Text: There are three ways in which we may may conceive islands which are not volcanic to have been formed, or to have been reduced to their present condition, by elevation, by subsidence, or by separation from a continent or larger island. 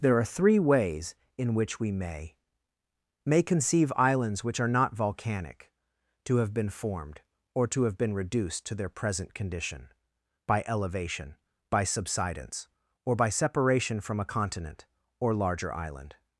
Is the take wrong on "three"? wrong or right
right